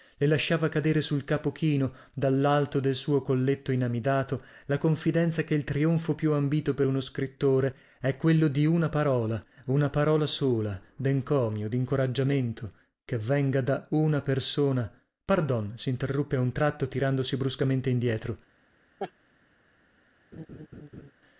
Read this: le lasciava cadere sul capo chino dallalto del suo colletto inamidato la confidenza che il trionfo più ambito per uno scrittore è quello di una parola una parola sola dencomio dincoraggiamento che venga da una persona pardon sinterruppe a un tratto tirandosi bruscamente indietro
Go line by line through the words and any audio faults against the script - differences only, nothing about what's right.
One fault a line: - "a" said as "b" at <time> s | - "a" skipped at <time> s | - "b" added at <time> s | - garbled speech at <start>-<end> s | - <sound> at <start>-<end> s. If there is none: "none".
- laugh at 19.0-19.1 s
- laugh at 20.3-21.1 s